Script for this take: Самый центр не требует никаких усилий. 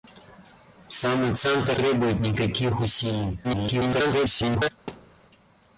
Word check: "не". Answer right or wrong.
wrong